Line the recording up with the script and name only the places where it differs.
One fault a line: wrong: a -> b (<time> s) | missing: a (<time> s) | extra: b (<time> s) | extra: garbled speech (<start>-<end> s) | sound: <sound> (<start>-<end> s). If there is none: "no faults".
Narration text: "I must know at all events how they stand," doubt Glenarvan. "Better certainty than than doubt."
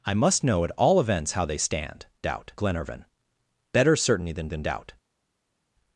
no faults